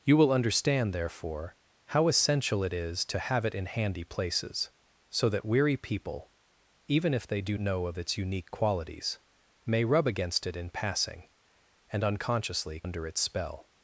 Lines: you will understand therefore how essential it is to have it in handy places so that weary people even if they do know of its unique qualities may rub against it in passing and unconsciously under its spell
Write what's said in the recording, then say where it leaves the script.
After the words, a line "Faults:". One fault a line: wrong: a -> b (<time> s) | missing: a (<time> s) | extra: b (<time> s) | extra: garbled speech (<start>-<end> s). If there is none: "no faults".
you will understand therefore how essential it is to have it in handy places so that weary people even if they do know of its unique qualities may rub against it in passing and unconsciously under its spell
Faults:
no faults